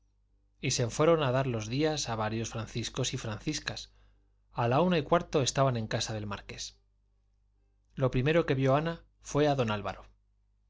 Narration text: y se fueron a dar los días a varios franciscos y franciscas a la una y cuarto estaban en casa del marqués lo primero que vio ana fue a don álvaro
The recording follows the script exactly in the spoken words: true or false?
true